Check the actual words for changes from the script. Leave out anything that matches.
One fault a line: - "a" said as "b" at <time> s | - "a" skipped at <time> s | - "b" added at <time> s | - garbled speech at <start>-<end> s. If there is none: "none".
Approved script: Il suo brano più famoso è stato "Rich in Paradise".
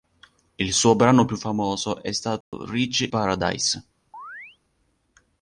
- "in" skipped at 3.1 s